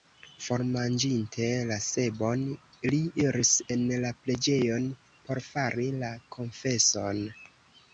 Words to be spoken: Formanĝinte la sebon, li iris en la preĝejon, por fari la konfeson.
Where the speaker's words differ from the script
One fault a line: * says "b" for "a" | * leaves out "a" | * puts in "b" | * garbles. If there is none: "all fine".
all fine